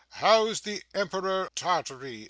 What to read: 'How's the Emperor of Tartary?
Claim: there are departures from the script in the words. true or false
true